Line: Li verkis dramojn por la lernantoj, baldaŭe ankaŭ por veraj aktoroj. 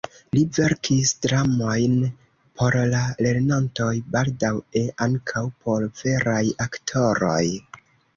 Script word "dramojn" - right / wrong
right